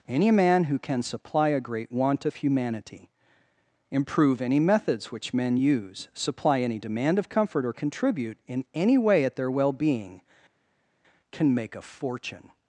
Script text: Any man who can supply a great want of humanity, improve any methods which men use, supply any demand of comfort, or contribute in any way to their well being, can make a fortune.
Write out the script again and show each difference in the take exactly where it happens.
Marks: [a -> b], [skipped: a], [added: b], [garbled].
Any man who can supply a great want of humanity, improve any methods which men use, supply any demand of comfort, or contribute in any way [to -> at] their well being, can make a fortune.